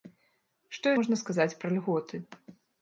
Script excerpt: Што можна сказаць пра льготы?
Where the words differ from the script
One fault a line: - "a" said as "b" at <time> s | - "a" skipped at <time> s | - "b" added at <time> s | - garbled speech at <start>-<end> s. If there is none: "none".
none